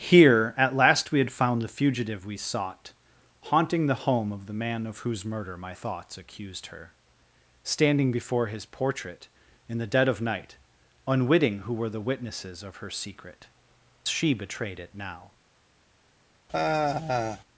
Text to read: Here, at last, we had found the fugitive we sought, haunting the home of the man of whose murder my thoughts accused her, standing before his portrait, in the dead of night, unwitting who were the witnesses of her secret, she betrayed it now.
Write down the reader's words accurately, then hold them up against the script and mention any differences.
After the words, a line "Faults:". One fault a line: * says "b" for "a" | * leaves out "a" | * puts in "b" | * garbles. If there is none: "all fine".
Here, at last, we had found the fugitive we sought, haunting the home of the man of whose murder my thoughts accused her, standing before his portrait, in the dead of night, unwitting who were the witnesses of her secret, she betrayed it now.
Faults:
all fine